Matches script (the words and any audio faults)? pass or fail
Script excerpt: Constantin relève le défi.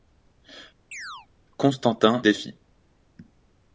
fail